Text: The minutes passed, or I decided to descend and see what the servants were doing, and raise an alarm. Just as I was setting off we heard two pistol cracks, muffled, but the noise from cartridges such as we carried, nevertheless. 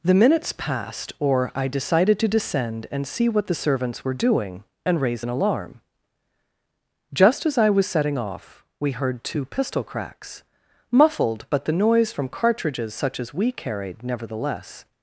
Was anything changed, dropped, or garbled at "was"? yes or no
no